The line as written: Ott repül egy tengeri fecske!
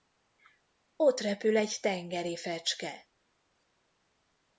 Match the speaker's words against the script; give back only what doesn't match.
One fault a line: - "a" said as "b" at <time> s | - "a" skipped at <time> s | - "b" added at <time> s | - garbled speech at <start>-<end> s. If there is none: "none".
none